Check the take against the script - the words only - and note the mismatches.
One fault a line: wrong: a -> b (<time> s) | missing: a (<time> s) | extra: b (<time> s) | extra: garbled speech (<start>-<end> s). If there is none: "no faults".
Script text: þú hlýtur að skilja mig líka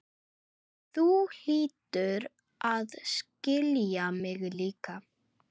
no faults